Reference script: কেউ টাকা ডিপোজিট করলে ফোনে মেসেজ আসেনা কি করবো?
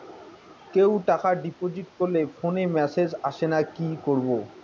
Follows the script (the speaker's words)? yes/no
yes